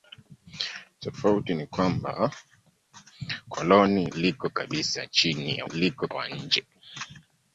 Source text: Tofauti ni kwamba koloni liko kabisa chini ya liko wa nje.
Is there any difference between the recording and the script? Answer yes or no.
no